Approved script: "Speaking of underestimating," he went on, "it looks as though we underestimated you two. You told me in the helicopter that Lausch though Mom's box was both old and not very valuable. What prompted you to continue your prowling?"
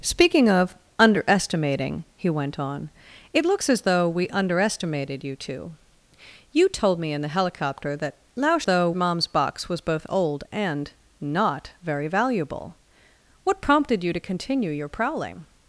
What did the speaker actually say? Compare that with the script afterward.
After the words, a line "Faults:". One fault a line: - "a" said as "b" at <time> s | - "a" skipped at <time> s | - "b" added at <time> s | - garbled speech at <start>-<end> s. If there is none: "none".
"Speaking of underestimating," he went on, "it looks as though we underestimated you two. You told me in the helicopter that Lausch though Mom's box was both old and not very valuable. What prompted you to continue your prowling?"
Faults:
none